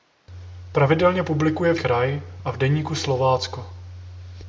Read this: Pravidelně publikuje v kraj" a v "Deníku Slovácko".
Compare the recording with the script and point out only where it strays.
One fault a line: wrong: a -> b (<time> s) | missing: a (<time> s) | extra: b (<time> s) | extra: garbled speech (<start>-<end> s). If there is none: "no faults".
no faults